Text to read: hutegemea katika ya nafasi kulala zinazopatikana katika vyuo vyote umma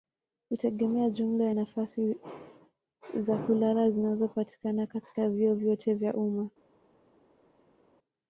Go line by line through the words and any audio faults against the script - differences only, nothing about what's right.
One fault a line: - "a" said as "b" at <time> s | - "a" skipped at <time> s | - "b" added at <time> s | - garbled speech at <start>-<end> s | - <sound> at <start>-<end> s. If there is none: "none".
- "katika" said as "jumla" at 1.1 s
- "za" added at 3.2 s
- "vya" added at 5.9 s